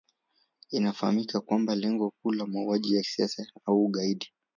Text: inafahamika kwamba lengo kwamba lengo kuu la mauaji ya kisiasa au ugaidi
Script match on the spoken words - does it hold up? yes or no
no